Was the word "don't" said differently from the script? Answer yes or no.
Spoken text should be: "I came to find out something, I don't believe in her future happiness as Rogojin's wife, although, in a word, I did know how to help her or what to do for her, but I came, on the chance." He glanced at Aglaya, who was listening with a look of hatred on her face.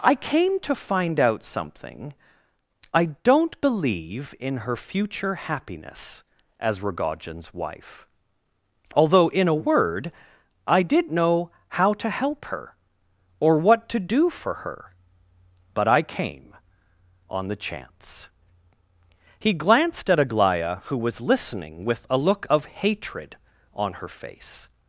no